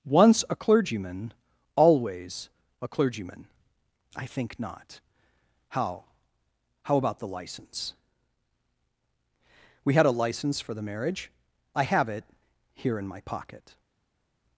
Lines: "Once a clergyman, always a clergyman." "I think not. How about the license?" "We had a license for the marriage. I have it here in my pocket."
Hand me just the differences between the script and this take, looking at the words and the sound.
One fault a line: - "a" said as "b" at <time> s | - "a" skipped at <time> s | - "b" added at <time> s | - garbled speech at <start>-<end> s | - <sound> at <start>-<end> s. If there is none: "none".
- "How" added at 6.8 s